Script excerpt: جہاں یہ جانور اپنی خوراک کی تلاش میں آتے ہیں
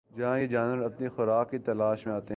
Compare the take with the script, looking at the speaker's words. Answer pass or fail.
pass